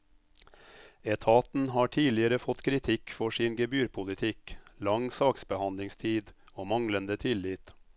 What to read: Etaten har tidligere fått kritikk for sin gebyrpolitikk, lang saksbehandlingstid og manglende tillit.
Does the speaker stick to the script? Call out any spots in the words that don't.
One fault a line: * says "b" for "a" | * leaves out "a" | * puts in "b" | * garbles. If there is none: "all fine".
all fine